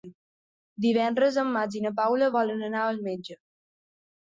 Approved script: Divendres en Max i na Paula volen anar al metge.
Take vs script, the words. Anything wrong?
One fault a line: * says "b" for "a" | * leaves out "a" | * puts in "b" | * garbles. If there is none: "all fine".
all fine